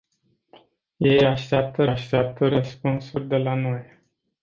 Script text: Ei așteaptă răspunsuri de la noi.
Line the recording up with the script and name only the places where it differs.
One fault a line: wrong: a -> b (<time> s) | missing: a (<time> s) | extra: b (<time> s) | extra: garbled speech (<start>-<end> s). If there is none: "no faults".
extra: așteaptă (1.8 s)